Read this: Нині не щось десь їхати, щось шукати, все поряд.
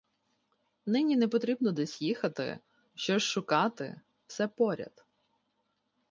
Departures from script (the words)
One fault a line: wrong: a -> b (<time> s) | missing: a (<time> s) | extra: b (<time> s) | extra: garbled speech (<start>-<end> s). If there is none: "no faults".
wrong: щось -> потрібно (1.3 s)